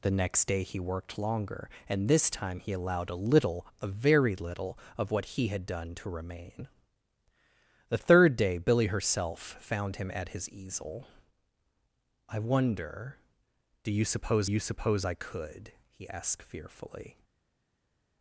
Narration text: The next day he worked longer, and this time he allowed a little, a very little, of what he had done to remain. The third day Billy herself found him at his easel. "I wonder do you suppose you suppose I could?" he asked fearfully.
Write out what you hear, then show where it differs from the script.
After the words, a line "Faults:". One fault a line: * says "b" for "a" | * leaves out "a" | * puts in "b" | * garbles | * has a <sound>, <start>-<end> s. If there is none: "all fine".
The next day he worked longer, and this time he allowed a little, a very little, of what he had done to remain. The third day Billy herself found him at his easel. "I wonder do you suppose you suppose I could?" he asked fearfully.
Faults:
all fine